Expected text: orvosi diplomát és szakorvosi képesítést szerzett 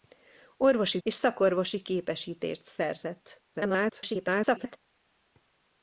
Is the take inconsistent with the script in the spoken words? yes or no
yes